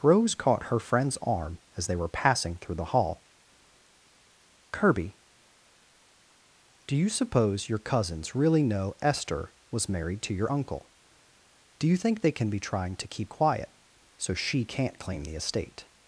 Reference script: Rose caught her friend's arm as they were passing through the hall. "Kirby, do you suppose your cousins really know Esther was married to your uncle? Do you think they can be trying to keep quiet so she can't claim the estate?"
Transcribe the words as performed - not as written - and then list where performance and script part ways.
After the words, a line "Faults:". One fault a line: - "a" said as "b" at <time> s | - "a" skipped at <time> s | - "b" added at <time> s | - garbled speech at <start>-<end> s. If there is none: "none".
Rose caught her friend's arm as they were passing through the hall. "Kirby, do you suppose your cousins really know Esther was married to your uncle? Do you think they can be trying to keep quiet so she can't claim the estate?"
Faults:
none